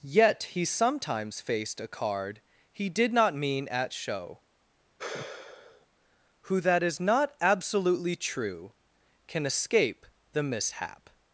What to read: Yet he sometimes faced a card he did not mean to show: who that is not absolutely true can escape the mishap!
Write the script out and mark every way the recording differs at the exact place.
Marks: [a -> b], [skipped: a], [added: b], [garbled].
Yet he sometimes faced a card he did not mean [to -> at] show: who that is not absolutely true can escape the mishap!